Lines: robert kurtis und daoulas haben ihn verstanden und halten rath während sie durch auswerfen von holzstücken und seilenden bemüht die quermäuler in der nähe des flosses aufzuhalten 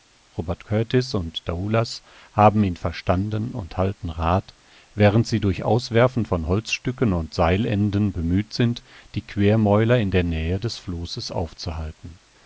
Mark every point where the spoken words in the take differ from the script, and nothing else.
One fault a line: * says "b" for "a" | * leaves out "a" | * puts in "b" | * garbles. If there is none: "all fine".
* puts in "sind"